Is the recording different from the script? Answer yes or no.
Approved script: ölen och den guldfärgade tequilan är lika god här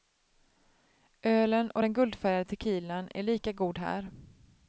no